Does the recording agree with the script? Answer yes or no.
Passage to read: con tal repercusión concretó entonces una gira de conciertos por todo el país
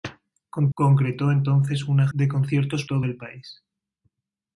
no